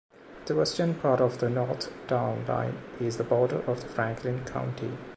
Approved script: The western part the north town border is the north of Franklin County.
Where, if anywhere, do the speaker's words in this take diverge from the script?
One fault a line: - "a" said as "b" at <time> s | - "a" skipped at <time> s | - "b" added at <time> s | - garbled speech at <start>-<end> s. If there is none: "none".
- "of" added at 1.2 s
- "border" said as "line" at 2.5 s
- "north" said as "border" at 3.2 s